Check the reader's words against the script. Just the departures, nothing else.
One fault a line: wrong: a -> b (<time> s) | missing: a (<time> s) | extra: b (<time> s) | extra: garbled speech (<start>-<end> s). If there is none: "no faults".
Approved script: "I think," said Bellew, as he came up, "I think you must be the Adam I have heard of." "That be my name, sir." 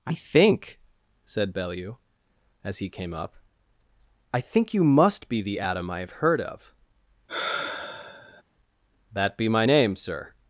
no faults